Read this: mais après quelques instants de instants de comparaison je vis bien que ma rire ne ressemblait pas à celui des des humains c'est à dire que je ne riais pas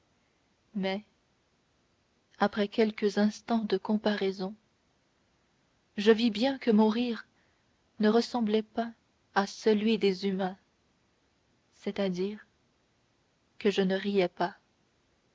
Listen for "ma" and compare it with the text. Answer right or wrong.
wrong